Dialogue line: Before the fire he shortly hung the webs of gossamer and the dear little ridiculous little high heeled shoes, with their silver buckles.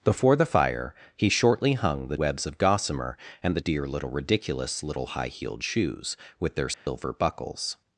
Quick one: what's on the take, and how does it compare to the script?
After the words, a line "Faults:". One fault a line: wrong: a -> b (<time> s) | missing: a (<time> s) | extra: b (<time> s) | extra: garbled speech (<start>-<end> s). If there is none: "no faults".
Before the fire he shortly hung the webs of gossamer and the dear little ridiculous little high heeled shoes, with their silver buckles.
Faults:
no faults